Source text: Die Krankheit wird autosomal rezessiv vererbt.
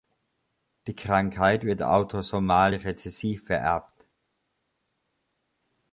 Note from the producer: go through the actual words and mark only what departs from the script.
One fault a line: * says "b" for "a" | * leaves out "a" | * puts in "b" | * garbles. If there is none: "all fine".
all fine